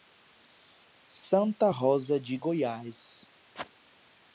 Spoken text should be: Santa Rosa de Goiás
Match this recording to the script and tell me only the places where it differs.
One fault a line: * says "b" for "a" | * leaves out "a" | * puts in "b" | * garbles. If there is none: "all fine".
all fine